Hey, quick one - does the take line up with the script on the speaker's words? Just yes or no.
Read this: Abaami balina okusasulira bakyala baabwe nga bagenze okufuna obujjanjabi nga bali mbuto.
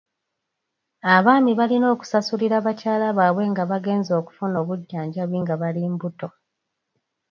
yes